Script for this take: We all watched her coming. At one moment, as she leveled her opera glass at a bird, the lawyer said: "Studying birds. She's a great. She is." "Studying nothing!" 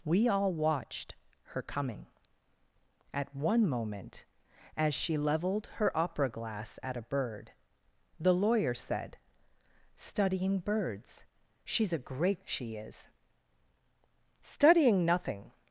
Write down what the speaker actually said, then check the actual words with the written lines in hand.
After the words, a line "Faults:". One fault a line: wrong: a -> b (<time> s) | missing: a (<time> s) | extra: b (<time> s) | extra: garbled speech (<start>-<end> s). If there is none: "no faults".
We all watched her coming. At one moment, as she leveled her opera glass at a bird, the lawyer said: "Studying birds. She's a great. She is." "Studying nothing!"
Faults:
no faults